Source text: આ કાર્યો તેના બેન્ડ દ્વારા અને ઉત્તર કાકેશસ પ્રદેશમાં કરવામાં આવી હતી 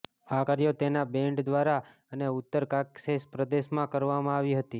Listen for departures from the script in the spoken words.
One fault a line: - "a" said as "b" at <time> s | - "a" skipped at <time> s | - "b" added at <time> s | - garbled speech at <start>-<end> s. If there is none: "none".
none